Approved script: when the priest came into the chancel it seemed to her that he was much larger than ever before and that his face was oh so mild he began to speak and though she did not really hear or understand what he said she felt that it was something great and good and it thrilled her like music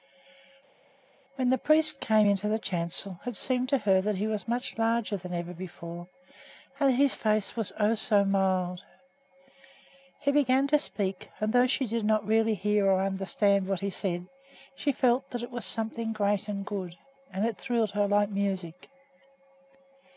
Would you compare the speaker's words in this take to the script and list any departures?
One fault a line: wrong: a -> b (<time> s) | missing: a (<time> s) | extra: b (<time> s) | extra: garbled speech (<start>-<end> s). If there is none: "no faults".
no faults